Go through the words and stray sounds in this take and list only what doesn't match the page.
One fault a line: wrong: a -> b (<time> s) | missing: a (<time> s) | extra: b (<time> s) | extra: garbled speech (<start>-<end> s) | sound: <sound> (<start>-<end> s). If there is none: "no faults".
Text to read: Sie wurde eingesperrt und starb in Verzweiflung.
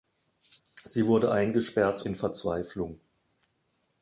missing: und starb (2.0 s)